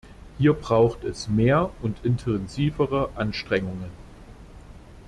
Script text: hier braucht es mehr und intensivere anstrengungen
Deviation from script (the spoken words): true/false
false